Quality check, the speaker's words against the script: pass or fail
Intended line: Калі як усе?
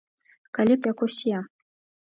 pass